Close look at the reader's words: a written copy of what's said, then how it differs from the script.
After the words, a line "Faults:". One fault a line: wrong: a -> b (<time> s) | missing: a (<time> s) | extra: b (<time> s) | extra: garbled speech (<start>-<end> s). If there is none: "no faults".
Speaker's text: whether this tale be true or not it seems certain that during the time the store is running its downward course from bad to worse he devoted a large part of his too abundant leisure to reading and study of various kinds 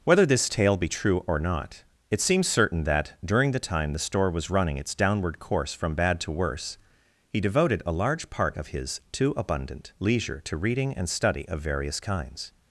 whether this tale be true or not it seems certain that during the time the store was running its downward course from bad to worse he devoted a large part of his too abundant leisure to reading and study of various kinds
Faults:
wrong: is -> was (4.3 s)